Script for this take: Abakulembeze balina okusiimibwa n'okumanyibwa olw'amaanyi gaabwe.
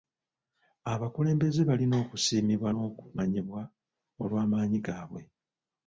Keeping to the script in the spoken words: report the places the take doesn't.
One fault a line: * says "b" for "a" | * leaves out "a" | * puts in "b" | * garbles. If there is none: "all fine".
all fine